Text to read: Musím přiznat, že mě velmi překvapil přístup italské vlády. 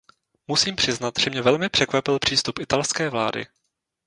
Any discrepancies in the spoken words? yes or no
no